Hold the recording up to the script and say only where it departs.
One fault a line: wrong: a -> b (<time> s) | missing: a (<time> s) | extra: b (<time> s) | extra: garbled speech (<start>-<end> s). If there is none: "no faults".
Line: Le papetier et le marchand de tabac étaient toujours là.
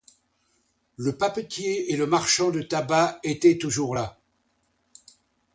no faults